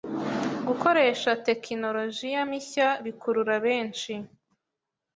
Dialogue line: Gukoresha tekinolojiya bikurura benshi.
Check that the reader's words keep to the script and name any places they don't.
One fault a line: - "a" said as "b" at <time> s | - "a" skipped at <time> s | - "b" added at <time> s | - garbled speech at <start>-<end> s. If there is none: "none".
- "mishya" added at 2.5 s